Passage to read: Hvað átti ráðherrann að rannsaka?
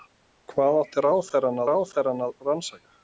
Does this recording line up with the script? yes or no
no